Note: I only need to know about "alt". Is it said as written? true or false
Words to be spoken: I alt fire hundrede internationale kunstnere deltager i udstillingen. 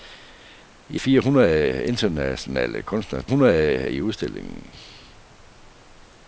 false